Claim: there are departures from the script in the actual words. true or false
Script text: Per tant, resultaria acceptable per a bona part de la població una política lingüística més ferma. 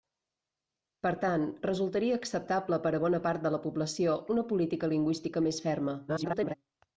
true